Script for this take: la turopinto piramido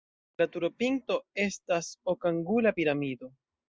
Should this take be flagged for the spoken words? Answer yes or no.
yes